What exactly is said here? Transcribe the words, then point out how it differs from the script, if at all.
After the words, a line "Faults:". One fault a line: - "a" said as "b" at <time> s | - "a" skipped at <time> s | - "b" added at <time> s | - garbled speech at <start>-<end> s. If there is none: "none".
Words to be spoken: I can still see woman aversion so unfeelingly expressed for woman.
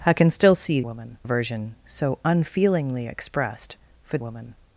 I can still see woman aversion so unfeelingly expressed for woman.
Faults:
none